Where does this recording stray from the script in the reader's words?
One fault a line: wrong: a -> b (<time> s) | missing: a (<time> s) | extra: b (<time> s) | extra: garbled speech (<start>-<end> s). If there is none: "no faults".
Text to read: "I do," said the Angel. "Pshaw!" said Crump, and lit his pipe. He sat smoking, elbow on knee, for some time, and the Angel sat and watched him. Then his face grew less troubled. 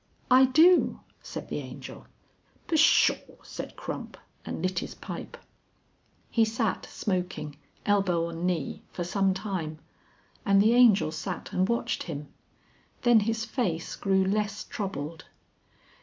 no faults